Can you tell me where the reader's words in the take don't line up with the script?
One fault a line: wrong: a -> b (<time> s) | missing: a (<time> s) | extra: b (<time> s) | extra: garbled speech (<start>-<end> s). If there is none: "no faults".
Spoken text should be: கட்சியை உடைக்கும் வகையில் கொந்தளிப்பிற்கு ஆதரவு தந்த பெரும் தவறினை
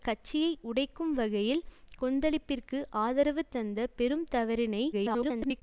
extra: garbled speech (4.9-5.6 s)